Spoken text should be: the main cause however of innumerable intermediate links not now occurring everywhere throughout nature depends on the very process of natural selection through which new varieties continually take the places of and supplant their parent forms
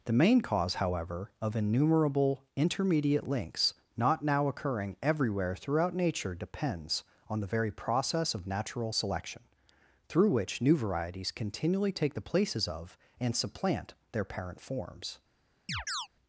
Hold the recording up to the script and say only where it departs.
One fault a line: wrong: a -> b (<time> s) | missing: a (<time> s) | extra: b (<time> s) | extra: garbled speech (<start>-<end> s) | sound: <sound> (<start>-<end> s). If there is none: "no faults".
sound: chirp (15.7-16.1 s)